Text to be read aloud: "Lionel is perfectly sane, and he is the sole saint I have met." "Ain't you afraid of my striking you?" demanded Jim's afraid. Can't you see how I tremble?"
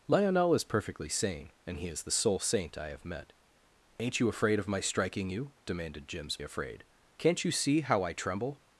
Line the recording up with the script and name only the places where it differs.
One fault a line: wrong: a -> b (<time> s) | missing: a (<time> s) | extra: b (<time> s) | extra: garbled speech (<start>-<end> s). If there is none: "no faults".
no faults